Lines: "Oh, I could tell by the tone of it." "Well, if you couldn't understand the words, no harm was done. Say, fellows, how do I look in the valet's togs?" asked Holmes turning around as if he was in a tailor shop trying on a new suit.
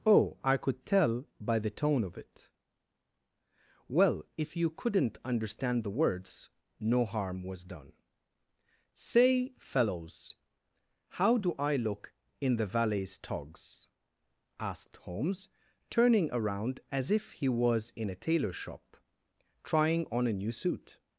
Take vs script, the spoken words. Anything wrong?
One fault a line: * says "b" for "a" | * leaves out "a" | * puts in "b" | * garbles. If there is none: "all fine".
all fine